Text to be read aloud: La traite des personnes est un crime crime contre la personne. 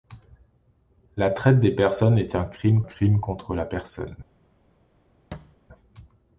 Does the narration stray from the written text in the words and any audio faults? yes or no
yes